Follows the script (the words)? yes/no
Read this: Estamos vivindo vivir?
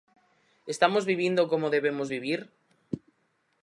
no